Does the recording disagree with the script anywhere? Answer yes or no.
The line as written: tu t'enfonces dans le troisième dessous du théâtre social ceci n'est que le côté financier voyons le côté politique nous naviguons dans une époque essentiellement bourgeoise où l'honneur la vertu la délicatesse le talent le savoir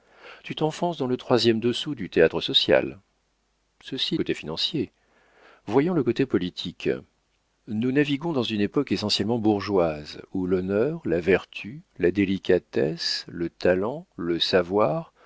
yes